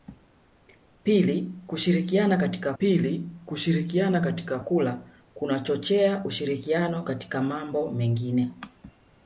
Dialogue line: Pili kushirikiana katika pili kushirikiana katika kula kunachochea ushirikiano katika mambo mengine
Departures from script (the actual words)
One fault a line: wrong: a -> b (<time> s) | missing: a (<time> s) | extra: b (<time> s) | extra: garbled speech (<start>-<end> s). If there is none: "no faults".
no faults